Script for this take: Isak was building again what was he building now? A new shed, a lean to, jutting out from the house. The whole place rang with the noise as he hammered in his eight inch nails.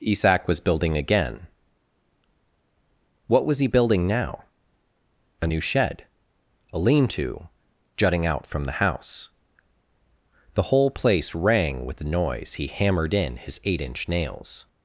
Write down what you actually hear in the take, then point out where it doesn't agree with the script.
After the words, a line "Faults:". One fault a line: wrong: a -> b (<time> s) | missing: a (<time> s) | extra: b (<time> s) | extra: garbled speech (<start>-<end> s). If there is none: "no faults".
Isak was building again what was he building now? A new shed, a lean to, jutting out from the house. The whole place rang with the noise he hammered in his eight inch nails.
Faults:
missing: as (12.5 s)